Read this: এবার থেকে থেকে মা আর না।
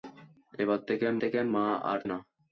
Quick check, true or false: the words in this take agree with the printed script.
true